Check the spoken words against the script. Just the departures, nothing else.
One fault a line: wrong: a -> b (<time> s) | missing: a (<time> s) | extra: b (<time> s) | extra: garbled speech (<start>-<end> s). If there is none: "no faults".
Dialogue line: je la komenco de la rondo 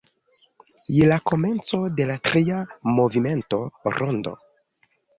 extra: tria movimento (2.3 s)